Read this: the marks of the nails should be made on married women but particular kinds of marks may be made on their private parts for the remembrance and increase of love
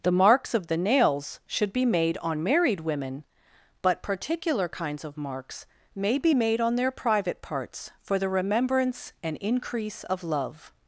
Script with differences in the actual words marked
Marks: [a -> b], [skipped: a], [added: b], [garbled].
the marks of the nails should be made on married women but particular kinds of marks may be made on their private parts for the remembrance and increase of love